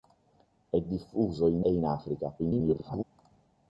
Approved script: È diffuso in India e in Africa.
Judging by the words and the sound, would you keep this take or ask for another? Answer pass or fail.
fail